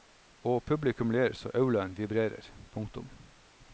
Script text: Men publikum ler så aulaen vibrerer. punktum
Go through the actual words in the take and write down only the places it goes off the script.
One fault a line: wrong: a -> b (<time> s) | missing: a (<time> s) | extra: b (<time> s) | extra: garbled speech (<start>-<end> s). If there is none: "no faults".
wrong: Men -> Og (0.4 s)